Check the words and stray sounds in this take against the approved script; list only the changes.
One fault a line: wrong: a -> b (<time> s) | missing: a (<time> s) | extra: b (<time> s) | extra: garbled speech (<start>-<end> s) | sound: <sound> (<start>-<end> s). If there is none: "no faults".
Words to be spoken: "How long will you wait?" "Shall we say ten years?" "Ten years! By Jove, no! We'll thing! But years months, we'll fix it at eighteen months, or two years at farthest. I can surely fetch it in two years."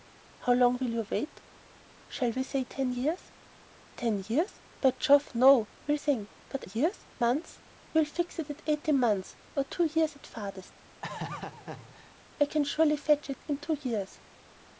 sound: laugh (11.0-12.2 s)